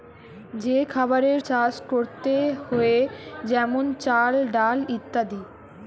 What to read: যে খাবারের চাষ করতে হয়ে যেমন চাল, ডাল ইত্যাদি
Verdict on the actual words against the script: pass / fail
pass